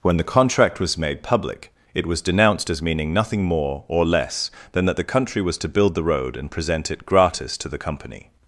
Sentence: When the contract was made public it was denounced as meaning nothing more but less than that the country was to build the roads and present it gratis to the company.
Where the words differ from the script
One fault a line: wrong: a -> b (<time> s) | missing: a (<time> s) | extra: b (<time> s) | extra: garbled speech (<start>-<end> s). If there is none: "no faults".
wrong: but -> or (3.9 s)
wrong: roads -> road (6.0 s)